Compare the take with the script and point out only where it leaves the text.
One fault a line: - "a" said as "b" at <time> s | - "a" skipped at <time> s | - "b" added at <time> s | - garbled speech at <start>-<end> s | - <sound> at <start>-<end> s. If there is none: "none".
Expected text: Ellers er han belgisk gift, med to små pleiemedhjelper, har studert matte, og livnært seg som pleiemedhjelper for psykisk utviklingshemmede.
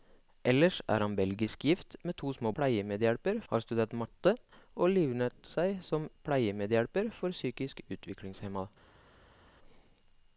none